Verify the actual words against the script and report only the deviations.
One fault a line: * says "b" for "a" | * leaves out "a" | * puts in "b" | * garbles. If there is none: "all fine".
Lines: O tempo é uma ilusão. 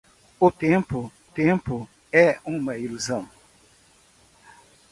* puts in "tempo"